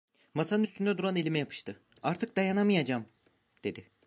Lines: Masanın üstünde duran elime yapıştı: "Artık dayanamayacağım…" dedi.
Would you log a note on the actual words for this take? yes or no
no